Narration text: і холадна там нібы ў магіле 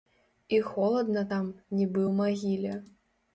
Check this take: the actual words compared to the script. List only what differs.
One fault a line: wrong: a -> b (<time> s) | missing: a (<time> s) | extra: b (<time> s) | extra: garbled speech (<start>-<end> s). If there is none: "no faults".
no faults